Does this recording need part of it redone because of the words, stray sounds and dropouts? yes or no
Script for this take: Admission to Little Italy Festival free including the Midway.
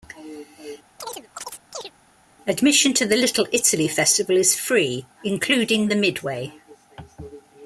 yes